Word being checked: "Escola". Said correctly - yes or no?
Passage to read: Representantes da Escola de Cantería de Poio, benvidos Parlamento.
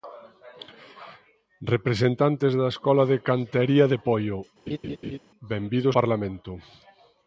yes